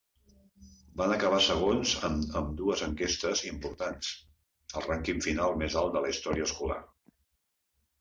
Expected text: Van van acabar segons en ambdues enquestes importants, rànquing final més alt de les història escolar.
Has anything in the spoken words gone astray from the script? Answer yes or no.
yes